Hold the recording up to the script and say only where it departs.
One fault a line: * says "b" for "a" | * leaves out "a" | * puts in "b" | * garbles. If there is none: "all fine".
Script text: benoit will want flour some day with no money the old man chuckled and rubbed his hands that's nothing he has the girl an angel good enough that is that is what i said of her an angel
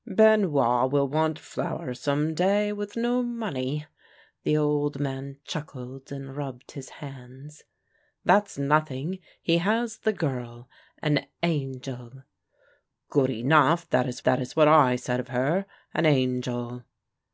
all fine